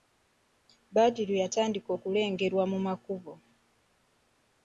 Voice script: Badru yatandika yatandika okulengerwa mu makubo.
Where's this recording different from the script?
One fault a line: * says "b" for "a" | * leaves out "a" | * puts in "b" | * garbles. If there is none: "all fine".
* leaves out "yatandika"